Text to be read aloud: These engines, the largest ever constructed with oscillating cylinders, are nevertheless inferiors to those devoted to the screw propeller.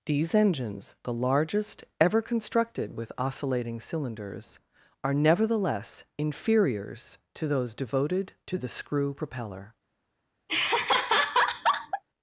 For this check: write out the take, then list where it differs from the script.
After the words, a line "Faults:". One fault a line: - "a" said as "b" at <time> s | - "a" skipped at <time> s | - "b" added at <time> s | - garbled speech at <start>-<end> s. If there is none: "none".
These engines, the largest ever constructed with oscillating cylinders, are nevertheless inferiors to those devoted to the screw propeller.
Faults:
none